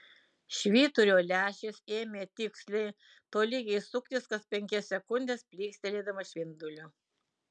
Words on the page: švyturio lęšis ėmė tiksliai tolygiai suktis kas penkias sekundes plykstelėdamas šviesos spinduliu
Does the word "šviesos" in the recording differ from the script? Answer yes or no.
yes